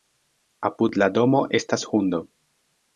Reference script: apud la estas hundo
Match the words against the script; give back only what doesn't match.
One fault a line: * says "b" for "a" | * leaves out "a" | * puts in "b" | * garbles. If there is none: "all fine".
* puts in "domo"